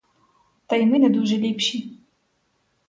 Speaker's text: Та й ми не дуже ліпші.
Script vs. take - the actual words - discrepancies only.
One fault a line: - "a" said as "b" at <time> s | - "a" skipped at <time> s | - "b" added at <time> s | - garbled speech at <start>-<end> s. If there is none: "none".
none